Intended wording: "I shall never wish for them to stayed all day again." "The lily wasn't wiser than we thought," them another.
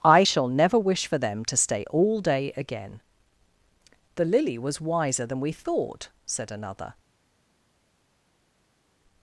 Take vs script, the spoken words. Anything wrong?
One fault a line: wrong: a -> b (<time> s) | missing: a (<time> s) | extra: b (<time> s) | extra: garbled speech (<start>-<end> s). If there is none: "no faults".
wrong: stayed -> stay (1.6 s)
wrong: wasn't -> was (4.6 s)
wrong: them -> said (6.3 s)